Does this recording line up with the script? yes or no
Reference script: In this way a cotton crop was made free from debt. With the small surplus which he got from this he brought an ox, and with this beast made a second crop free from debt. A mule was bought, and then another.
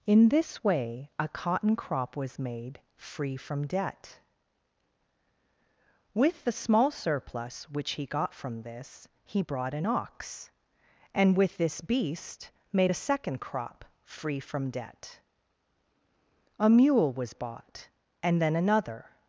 yes